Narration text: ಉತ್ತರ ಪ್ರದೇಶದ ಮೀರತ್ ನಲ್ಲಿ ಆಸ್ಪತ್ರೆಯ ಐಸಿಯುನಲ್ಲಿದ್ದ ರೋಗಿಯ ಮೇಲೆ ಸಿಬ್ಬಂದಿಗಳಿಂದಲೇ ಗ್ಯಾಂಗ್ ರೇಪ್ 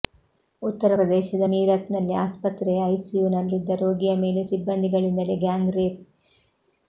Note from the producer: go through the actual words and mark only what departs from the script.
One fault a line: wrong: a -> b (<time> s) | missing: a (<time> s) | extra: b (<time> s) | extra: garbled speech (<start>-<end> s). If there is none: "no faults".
no faults